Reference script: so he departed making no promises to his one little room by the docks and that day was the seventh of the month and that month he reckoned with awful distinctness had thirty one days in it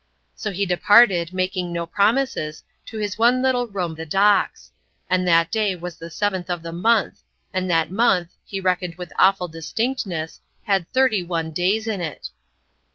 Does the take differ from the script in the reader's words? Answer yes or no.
yes